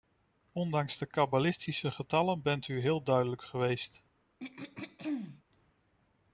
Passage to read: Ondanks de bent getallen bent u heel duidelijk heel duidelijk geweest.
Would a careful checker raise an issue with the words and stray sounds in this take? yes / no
yes